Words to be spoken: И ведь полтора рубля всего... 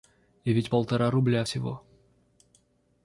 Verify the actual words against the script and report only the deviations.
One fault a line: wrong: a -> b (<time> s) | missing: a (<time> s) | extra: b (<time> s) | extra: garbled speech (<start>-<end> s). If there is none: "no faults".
no faults